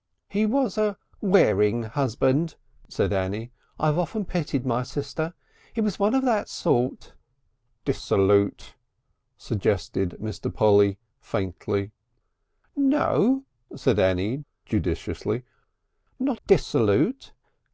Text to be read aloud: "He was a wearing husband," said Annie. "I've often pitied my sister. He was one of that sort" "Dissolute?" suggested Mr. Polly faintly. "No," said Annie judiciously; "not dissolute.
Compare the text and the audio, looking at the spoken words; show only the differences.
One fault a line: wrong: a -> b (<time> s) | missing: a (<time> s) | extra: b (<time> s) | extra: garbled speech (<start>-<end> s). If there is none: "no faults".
no faults